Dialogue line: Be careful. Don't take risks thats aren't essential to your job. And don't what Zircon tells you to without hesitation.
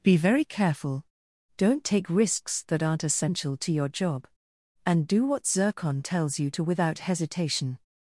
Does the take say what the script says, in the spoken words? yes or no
no